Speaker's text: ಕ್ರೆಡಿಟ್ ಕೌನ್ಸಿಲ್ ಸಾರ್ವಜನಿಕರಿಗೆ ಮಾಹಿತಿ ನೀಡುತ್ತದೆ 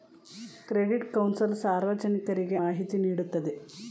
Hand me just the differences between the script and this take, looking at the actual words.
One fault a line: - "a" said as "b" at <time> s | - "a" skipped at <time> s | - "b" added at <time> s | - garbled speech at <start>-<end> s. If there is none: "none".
none